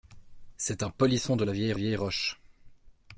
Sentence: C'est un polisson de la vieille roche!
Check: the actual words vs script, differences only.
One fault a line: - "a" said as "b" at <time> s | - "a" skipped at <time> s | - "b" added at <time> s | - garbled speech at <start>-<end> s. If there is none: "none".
- "vieille" added at 1.7 s